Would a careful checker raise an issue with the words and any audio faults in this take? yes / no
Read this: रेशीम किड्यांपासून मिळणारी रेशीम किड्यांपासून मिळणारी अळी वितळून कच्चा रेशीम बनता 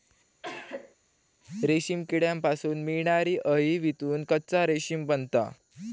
yes